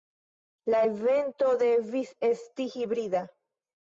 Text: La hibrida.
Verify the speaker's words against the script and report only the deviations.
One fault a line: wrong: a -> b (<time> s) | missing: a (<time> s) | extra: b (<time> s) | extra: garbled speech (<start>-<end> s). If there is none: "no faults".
extra: evento devis esti (0.9 s)